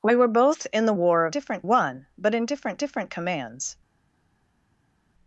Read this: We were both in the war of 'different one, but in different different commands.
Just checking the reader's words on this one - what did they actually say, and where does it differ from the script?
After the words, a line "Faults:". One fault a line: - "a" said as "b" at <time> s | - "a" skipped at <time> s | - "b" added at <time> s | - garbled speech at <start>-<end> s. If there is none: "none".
We were both in the war of 'different one, but in different different commands.
Faults:
none